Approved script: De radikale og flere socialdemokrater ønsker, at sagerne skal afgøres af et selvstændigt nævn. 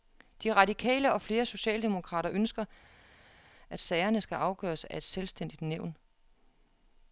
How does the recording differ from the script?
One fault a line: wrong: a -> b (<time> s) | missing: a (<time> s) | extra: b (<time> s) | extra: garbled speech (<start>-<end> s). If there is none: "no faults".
no faults